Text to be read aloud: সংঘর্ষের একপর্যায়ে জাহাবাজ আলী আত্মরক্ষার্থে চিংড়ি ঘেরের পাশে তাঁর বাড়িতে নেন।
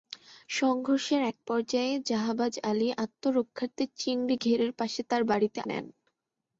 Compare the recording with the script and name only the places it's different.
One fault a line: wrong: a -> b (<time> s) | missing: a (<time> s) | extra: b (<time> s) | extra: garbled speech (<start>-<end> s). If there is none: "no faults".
no faults